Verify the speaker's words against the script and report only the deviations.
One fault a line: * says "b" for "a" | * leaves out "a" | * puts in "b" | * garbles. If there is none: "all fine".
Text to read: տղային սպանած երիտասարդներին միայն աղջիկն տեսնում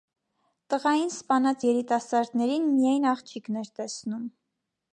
* puts in "էր"